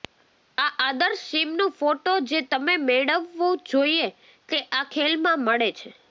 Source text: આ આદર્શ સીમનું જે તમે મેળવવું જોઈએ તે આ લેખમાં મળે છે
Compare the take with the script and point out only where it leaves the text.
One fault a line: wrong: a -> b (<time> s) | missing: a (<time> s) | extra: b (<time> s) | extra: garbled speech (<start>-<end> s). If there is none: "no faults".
extra: ફોટો (1.8 s)